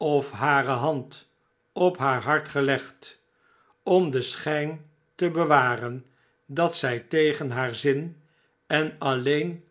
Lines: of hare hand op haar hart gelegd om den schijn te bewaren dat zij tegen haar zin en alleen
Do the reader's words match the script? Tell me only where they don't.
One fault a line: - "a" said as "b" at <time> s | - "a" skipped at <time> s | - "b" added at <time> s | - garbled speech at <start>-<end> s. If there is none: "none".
none